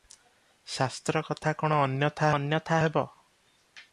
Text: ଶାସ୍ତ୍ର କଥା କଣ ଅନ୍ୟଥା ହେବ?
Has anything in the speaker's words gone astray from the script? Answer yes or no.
yes